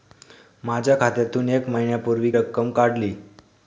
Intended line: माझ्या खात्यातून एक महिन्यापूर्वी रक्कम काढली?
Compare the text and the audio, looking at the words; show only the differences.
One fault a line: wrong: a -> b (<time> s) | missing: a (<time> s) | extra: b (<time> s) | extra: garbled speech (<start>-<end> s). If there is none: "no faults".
no faults